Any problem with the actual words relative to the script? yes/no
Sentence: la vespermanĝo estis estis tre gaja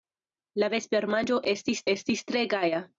no